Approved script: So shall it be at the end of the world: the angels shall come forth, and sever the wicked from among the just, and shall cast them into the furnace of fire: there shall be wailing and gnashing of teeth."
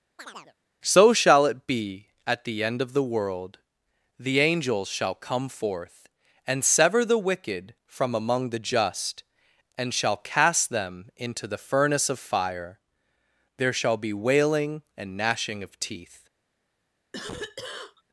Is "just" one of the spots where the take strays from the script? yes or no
no